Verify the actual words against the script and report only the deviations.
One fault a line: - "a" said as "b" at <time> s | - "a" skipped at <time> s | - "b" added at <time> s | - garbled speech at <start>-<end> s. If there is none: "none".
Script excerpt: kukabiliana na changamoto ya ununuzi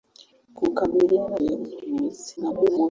- "na changamoto" skipped at 1.4 s
- garbled speech at 2.4-2.9 s